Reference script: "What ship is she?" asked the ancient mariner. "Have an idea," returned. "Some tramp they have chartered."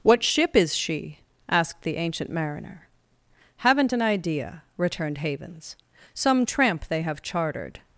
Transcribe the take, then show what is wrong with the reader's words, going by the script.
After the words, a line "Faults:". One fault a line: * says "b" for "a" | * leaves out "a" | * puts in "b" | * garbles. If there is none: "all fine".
"What ship is she?" asked the ancient mariner. "Haven't an idea," returned Havens. "Some tramp they have chartered."
Faults:
* says "Haven't" for "Have"
* puts in "Havens"